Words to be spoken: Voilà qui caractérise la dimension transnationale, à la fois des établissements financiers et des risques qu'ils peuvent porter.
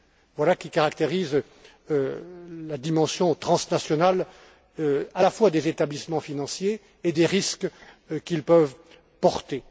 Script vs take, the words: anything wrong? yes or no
no